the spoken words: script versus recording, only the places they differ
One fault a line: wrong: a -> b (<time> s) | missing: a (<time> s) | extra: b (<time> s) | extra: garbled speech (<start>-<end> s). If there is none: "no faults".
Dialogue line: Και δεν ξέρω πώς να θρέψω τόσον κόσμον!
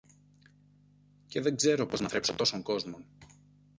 no faults